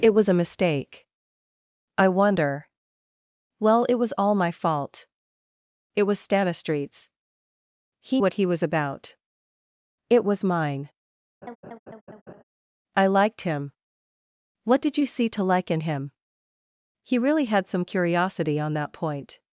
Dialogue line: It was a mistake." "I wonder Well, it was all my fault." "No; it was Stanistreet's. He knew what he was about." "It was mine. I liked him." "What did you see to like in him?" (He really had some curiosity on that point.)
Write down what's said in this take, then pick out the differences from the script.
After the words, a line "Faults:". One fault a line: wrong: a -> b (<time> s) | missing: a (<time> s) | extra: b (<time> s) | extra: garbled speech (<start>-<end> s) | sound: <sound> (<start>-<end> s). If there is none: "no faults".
It was a mistake." "I wonder Well, it was all my fault; "It was Stanistreet's. He what he was about." "It was mine. I liked him." "What did you see to like in him?" (He really had some curiosity on that point.)
Faults:
missing: No (5.1 s)
missing: knew (8.2 s)
sound: laugh (11.4-12.4 s)